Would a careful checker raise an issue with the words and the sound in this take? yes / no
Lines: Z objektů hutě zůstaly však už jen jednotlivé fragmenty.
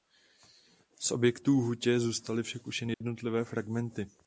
yes